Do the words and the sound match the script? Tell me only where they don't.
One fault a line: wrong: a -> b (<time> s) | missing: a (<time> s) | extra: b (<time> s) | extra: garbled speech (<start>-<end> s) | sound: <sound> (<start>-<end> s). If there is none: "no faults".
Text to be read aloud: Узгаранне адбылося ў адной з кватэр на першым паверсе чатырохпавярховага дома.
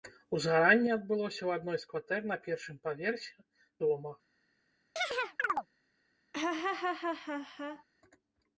missing: чатырохпавярховага (3.4 s)
sound: chirp (5.0-5.7 s)
sound: laugh (6.3-7.8 s)